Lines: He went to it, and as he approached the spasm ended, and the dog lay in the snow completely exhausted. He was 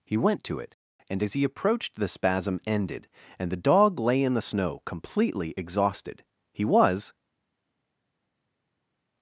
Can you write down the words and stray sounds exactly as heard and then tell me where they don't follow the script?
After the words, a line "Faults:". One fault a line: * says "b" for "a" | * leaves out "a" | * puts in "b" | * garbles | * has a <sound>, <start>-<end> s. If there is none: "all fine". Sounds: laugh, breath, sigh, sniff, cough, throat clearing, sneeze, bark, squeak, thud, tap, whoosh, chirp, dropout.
He went to it, and as he approached the spasm ended, and the dog lay in the snow completely exhausted. He was
Faults:
all fine